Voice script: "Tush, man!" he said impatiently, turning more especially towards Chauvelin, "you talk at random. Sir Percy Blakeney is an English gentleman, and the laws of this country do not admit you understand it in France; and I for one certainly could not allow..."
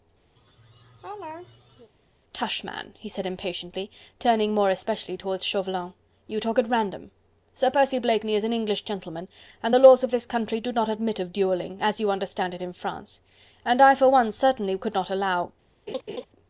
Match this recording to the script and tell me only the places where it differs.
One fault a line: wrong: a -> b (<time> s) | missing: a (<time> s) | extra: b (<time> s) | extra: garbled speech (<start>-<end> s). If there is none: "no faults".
extra: of duelling as (11.2 s)